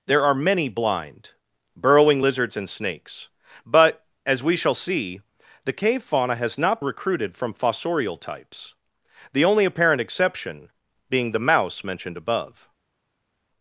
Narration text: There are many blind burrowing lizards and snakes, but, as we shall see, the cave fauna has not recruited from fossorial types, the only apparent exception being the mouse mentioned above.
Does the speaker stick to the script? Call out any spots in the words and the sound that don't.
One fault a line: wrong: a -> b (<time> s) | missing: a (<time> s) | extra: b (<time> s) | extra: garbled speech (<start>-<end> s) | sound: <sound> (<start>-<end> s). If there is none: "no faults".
no faults